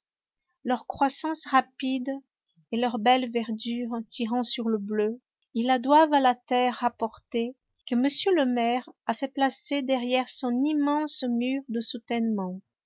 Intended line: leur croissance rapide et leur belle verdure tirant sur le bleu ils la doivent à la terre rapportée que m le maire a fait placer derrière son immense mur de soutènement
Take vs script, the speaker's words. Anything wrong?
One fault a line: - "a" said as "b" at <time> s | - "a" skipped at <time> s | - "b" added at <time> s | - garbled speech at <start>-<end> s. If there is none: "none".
none